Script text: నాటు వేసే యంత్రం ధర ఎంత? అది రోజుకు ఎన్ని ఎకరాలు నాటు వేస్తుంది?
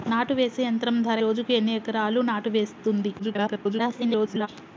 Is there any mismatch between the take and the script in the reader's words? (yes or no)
yes